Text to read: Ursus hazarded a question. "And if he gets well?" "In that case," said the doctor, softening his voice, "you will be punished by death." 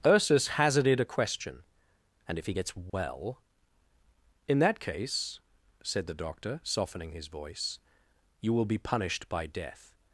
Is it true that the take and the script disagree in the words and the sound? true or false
true